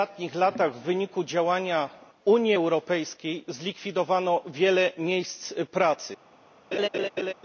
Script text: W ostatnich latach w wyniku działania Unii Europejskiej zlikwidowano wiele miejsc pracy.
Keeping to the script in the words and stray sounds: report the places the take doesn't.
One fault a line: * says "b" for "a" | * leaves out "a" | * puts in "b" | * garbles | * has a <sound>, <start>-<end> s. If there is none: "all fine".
* has a laugh, 6.7-7.3 s